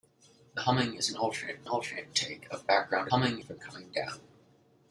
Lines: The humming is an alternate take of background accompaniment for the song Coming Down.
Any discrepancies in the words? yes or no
yes